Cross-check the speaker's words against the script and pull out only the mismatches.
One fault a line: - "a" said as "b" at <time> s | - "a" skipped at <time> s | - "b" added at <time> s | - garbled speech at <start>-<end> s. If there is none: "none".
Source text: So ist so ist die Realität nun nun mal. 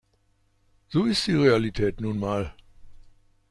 - "so ist" skipped at 1.3 s
- "nun" skipped at 2.2 s